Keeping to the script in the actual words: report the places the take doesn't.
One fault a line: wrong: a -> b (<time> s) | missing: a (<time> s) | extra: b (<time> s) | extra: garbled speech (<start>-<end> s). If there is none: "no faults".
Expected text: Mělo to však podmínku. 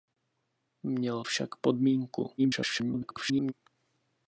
missing: to (1.2 s)
extra: garbled speech (2.4-3.5 s)